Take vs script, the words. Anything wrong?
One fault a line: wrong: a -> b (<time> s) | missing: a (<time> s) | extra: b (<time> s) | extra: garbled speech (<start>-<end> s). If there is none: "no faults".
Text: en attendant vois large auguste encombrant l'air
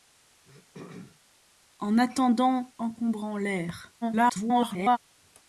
missing: vois large auguste (2.7 s)
extra: garbled speech (4.0-5.0 s)